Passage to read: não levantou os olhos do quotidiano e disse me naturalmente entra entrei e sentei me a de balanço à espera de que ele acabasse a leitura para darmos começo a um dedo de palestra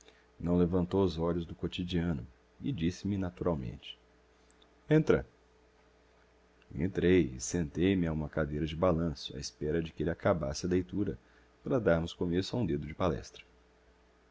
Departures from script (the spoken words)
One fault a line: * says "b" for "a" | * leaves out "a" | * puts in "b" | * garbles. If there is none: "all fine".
* puts in "uma cadeira"